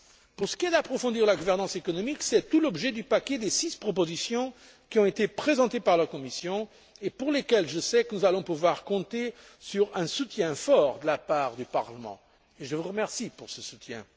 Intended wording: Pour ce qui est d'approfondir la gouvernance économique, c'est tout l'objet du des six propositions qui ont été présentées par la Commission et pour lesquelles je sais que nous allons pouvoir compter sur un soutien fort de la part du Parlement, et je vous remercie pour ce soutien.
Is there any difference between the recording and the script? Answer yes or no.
yes